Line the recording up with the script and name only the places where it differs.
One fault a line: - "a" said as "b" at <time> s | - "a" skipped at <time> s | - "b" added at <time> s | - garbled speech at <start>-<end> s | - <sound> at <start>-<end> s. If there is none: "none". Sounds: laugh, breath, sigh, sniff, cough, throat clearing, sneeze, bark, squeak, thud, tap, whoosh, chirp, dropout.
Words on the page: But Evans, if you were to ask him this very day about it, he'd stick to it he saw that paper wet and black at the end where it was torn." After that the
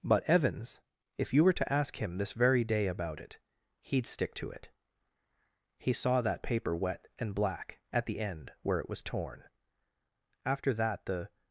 none